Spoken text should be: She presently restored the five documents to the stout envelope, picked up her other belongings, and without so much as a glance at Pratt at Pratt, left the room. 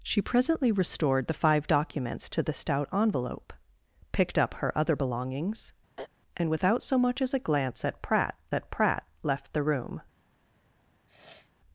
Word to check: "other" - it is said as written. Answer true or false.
true